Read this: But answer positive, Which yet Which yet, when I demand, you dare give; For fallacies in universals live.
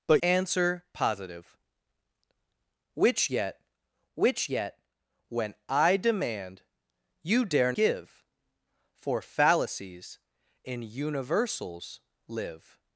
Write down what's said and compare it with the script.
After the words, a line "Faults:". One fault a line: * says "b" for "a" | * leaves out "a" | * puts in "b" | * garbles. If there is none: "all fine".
But answer positive, Which yet Which yet, when I demand, you dare give; For fallacies in universals live.
Faults:
all fine